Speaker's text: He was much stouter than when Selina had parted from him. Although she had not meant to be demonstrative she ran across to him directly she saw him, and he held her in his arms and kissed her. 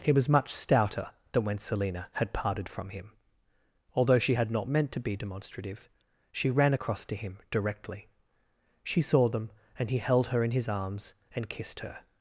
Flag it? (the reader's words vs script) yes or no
yes